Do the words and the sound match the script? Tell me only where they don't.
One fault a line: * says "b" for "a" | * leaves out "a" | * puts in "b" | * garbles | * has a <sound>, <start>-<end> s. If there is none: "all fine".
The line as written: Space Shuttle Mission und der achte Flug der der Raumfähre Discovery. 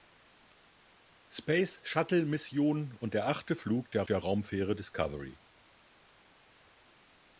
all fine